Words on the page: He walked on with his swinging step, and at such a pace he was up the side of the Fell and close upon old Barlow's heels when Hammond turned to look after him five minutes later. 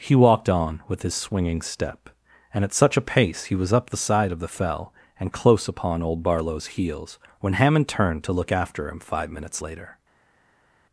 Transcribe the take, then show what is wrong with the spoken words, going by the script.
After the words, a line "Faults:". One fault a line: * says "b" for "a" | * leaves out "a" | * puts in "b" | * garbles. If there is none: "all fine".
He walked on with his swinging step, and at such a pace he was up the side of the Fell and close upon old Barlow's heels when Hammond turned to look after him five minutes later.
Faults:
all fine